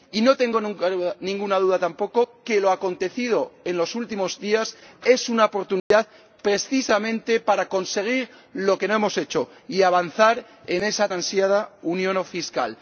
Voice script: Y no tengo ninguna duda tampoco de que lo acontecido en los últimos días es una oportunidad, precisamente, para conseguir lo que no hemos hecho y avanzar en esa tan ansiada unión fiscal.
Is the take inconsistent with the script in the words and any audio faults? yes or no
yes